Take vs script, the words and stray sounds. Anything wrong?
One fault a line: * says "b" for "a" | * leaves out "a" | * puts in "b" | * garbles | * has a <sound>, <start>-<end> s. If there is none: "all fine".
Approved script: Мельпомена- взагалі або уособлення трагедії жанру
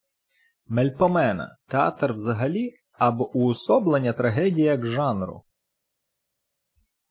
* puts in "театр"
* puts in "як"